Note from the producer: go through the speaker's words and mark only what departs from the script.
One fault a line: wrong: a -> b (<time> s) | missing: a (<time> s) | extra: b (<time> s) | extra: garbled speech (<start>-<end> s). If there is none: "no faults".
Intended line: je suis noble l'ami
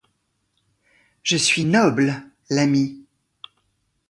no faults